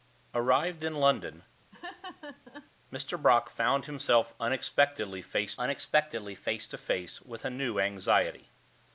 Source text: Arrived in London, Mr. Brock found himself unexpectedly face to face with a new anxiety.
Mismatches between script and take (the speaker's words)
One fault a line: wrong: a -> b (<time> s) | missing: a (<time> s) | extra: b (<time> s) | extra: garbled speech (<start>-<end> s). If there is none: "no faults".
extra: unexpectedly face (5.6 s)